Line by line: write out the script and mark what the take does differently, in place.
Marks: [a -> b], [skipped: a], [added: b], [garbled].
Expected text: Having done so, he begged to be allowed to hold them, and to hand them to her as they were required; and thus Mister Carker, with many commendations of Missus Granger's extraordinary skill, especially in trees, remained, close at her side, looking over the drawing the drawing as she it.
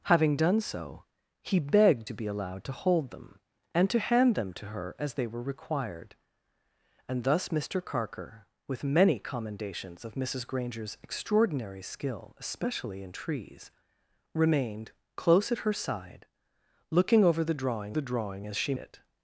Having done so, he begged to be allowed to hold them, and to hand them to her as they were required; and thus Mister Carker, with many commendations of Missus Granger's extraordinary skill, especially in trees, remained, close at her side, looking over the drawing the drawing as she it.